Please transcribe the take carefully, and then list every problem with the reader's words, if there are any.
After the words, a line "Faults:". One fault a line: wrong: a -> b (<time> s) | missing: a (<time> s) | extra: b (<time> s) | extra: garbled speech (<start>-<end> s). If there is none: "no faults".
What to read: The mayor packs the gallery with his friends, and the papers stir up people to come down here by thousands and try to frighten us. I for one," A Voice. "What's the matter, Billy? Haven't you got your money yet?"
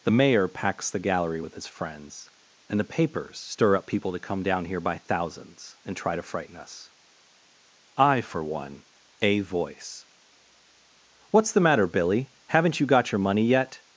The mayor packs the gallery with his friends, and the papers stir up people to come down here by thousands and try to frighten us. I for one," A Voice. "What's the matter, Billy? Haven't you got your money yet?"
Faults:
no faults